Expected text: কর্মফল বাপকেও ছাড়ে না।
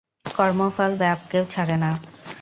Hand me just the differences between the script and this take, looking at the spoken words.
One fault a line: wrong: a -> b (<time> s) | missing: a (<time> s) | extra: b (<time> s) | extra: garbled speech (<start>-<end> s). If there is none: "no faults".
no faults